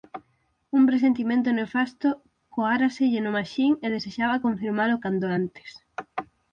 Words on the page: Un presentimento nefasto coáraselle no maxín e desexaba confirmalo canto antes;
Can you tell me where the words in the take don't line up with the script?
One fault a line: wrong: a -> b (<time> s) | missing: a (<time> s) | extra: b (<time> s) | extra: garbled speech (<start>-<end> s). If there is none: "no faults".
no faults